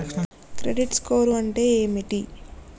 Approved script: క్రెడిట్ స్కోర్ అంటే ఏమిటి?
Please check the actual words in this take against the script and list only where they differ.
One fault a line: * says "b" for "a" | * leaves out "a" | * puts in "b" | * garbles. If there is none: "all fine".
all fine